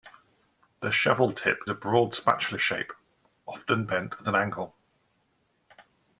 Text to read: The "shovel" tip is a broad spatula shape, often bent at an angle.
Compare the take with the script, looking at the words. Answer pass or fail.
fail